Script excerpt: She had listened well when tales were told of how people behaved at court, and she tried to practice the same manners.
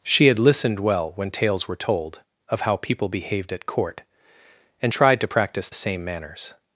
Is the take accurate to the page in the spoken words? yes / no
no